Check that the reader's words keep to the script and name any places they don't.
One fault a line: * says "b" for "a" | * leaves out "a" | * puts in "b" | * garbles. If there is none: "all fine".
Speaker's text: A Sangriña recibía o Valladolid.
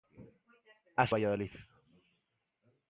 * leaves out "Sangriña recibía"